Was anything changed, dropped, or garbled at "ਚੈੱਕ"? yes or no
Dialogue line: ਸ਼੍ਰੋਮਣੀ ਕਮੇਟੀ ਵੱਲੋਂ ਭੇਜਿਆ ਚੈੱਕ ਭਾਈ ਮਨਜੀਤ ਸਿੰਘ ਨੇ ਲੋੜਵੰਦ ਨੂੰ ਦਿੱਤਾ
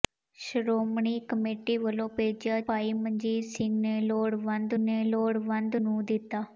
yes